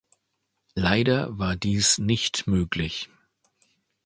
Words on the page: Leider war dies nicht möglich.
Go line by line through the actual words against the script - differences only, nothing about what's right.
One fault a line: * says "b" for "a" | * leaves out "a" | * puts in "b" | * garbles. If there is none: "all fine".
all fine